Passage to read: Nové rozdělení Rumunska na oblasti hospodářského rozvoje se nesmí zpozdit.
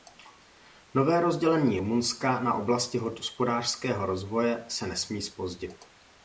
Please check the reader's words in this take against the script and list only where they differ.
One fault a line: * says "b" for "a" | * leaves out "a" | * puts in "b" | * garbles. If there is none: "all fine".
all fine